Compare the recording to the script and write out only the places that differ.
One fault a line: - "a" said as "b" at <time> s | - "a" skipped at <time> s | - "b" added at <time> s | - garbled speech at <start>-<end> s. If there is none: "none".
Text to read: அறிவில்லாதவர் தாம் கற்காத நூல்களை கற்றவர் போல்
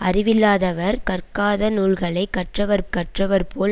- "தாம்" skipped at 1.0 s
- "கற்றவர்" added at 2.9 s